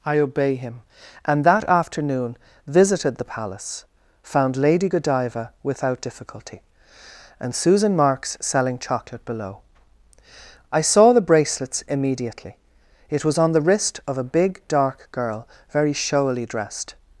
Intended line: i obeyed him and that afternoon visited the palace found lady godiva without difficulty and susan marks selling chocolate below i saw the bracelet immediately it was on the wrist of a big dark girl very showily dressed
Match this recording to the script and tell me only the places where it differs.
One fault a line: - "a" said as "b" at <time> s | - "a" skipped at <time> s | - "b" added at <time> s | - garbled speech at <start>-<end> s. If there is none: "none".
- "obeyed" said as "obey" at 0.2 s
- "bracelet" said as "bracelets" at 11.2 s